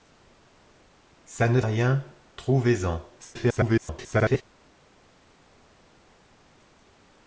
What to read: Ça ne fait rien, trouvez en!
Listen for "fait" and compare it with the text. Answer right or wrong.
wrong